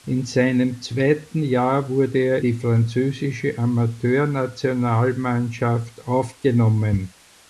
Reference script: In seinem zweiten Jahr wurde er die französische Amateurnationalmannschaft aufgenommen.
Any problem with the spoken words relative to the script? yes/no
no